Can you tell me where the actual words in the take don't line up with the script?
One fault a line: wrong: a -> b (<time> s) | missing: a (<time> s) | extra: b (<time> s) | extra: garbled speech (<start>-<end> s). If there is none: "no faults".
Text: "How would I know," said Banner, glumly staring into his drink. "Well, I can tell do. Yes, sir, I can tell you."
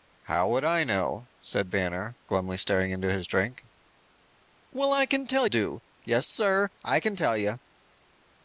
no faults